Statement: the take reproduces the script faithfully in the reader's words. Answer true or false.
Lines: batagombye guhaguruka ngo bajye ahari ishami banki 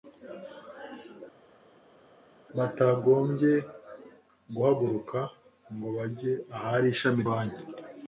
true